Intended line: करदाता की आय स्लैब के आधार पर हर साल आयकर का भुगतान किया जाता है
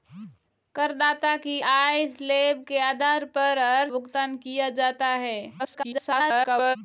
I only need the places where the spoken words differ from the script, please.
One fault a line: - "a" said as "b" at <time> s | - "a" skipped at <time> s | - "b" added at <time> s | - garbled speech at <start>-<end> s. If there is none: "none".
- "साल आयकर का" skipped at 3.9 s
- garbled speech at 5.6-6.8 s